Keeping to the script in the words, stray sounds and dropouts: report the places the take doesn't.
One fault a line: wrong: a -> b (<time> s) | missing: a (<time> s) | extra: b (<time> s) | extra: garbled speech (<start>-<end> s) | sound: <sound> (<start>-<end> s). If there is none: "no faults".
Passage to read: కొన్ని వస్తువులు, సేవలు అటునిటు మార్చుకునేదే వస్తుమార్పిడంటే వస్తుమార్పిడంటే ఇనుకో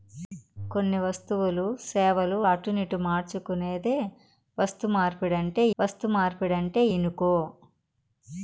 no faults